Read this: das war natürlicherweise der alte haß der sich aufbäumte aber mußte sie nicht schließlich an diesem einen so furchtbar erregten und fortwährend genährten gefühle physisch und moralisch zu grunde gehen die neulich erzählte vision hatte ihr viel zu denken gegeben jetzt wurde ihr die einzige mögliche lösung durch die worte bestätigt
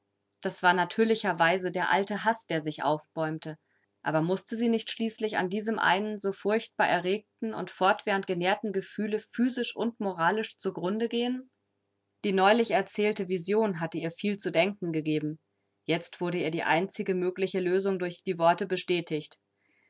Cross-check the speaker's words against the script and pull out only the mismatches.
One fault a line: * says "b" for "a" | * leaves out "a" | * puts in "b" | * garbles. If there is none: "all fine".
all fine